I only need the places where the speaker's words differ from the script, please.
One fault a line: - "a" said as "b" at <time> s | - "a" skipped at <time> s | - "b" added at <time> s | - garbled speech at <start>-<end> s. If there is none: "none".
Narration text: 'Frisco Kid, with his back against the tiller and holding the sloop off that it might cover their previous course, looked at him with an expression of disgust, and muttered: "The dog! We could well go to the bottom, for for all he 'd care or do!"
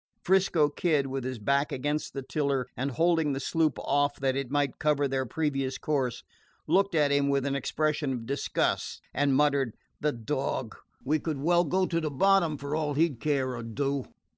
- "for" skipped at 12.7 s